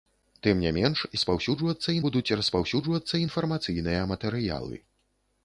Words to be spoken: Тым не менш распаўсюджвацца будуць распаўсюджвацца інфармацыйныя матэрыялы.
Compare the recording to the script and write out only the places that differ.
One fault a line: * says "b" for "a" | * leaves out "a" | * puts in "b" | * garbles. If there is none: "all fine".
all fine